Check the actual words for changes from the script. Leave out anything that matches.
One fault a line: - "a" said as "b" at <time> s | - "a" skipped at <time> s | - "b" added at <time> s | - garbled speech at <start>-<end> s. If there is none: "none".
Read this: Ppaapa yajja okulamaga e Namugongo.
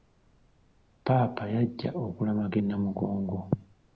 none